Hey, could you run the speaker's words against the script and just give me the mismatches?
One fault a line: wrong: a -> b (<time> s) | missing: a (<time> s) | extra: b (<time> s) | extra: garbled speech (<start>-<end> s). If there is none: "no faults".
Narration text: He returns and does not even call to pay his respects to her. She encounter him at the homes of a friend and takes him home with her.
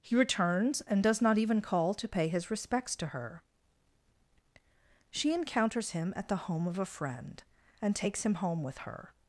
wrong: encounter -> encounters (5.3 s)
wrong: homes -> home (6.5 s)